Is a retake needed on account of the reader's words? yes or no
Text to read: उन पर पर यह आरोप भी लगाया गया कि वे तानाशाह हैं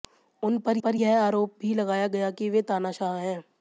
no